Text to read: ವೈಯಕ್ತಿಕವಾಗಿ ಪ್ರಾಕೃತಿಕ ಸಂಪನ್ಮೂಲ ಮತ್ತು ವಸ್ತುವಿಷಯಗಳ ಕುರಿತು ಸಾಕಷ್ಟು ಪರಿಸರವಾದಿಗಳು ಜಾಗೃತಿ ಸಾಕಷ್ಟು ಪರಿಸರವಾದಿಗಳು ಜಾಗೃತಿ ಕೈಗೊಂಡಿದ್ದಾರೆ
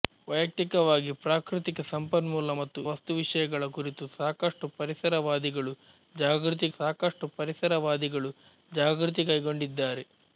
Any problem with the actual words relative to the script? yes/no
no